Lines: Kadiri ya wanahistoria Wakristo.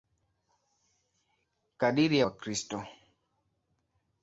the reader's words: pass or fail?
fail